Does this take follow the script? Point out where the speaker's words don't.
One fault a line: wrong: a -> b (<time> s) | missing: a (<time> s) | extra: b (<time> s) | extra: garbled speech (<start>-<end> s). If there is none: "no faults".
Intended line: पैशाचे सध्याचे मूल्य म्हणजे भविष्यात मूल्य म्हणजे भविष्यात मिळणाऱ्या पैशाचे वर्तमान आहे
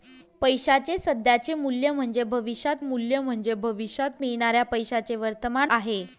no faults